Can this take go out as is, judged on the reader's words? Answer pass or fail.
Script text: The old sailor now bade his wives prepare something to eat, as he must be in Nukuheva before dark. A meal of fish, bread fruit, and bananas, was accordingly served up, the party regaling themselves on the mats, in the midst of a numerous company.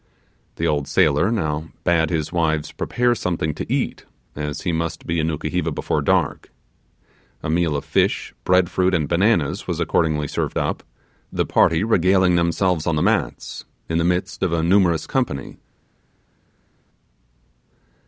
pass